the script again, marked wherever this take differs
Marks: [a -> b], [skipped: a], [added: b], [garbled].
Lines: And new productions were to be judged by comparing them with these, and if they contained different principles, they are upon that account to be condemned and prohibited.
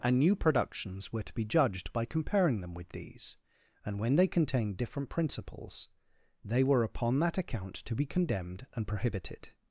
And new productions were to be judged by comparing them with these, and [if -> when] they contained different principles, they [are -> were] upon that account to be condemned and prohibited.